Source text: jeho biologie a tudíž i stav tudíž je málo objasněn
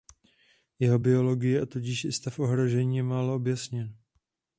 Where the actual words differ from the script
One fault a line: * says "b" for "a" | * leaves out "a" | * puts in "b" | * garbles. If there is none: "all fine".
* says "ohrožení" for "tudíž"